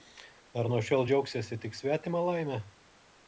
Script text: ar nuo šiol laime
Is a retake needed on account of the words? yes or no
yes